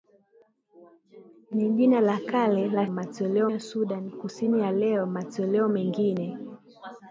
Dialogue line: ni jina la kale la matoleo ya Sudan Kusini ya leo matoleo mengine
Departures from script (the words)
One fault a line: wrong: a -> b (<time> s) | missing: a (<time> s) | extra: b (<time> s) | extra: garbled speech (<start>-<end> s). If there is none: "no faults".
no faults